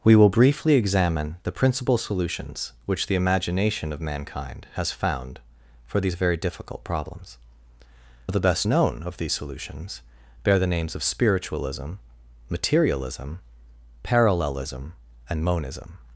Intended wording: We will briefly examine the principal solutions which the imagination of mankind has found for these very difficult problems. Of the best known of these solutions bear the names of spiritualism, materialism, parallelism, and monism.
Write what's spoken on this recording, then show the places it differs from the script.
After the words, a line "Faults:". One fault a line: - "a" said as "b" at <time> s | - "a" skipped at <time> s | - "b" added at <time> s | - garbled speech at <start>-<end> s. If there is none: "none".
We will briefly examine the principal solutions which the imagination of mankind has found for these very difficult problems. Of the best known of these solutions bear the names of spiritualism, materialism, parallelism, and monism.
Faults:
none